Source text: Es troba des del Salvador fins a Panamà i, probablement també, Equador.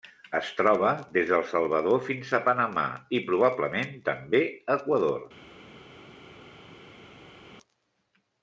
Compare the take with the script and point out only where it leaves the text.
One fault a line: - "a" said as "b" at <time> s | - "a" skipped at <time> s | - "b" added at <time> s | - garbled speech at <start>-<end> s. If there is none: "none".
none